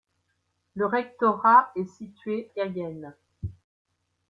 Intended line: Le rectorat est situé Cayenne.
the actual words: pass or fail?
pass